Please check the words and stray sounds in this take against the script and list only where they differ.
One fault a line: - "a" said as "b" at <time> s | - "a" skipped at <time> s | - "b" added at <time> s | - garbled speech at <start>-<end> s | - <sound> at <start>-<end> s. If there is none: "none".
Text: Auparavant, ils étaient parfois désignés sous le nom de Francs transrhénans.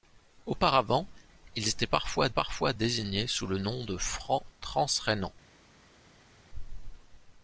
- "parfois" added at 2.3 s